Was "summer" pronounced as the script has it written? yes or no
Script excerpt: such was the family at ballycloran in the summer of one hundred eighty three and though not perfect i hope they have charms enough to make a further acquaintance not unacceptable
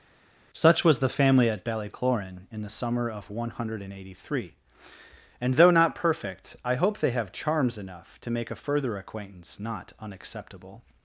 yes